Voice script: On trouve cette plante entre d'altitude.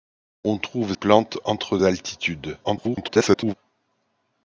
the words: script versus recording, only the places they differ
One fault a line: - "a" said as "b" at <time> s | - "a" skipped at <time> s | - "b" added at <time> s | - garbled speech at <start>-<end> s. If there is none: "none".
- "cette" skipped at 0.9 s
- garbled speech at 2.6-3.5 s